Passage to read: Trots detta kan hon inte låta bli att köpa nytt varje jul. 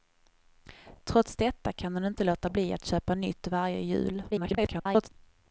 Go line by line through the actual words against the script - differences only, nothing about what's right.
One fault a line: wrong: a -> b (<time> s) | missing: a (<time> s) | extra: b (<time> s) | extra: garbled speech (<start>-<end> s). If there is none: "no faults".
extra: garbled speech (4.3-5.1 s)